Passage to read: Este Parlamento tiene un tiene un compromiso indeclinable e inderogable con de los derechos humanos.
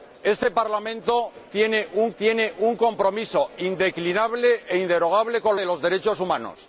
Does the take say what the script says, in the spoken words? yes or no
yes